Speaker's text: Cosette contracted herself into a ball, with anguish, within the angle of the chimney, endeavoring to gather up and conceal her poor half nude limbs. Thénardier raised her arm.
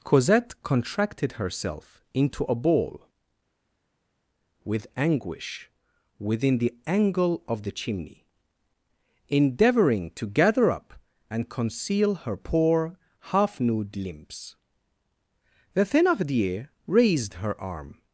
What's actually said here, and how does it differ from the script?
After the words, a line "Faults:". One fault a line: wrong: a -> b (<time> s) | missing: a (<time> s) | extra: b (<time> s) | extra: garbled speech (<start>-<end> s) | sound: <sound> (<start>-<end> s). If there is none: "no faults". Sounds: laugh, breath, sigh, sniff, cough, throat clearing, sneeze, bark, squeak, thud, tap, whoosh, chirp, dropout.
Cosette contracted herself into a ball, with anguish, within the angle of the chimney, endeavoring to gather up and conceal her poor half nude limbs. The Thénardier raised her arm.
Faults:
extra: The (15.7 s)